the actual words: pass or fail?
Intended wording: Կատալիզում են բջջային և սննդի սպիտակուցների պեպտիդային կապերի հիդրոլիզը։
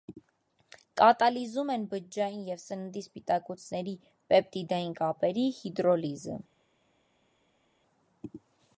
pass